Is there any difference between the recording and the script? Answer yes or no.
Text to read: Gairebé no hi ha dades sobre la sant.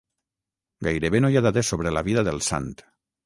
yes